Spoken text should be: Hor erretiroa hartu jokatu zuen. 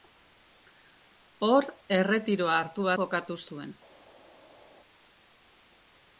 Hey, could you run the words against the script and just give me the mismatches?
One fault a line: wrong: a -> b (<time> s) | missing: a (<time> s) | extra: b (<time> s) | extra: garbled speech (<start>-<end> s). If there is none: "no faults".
no faults